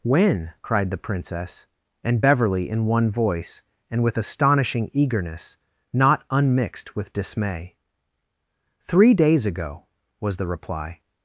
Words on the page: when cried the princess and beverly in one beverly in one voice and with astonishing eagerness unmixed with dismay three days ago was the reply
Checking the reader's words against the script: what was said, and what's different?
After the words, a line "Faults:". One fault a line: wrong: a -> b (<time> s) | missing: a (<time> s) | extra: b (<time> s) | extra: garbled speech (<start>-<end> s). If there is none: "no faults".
when cried the princess and beverly in one voice and with astonishing eagerness not unmixed with dismay three days ago was the reply
Faults:
missing: beverly in one (3.1 s)
extra: not (5.9 s)